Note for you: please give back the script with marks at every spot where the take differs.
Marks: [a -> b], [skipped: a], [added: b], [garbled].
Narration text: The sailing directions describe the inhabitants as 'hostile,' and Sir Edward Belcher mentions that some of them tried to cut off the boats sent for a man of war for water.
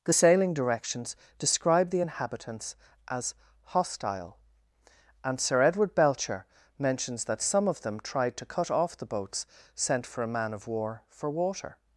The sailing directions describe the inhabitants as 'hostile,' and Sir Edward Belcher mentions that some of them tried to cut off the boats sent for a man of war for water.